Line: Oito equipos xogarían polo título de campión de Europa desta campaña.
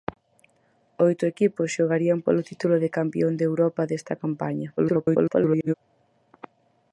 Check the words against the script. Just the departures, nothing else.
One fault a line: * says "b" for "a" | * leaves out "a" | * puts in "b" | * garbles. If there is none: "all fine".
* garbles